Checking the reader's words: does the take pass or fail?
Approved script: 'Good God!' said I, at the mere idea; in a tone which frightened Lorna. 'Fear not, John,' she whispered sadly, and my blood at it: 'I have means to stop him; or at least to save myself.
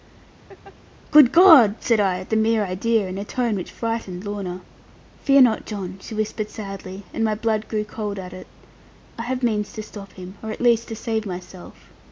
fail